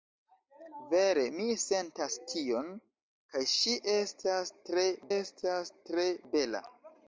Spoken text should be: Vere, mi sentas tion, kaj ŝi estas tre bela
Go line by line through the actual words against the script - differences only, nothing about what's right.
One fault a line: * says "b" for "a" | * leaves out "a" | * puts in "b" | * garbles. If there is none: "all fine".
* puts in "estas tre"